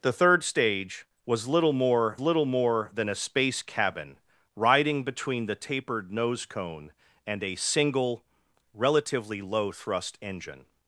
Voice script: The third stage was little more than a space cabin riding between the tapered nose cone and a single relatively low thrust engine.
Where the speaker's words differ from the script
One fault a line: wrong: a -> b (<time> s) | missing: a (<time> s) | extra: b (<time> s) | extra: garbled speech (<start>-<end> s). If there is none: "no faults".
extra: little more (2.2 s)